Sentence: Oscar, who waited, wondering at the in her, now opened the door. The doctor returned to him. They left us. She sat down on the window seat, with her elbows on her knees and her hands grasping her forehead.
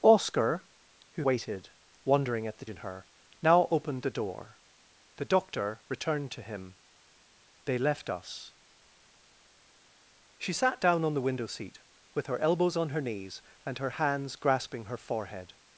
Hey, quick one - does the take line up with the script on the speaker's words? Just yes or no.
yes